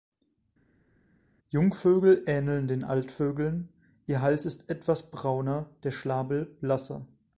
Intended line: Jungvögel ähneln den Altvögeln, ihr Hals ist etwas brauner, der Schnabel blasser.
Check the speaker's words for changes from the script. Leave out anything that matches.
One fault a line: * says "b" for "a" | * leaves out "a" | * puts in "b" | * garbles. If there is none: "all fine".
all fine